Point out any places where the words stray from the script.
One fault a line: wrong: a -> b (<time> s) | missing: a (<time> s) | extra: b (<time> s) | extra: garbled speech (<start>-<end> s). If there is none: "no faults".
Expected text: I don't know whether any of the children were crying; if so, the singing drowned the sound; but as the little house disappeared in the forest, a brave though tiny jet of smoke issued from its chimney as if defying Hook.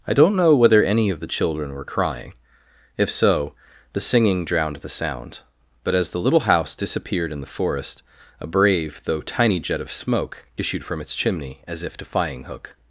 no faults